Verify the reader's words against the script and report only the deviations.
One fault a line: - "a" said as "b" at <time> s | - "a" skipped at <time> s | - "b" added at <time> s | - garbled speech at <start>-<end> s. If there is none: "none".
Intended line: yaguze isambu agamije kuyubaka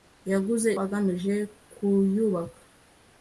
- "isambu" skipped at 0.7 s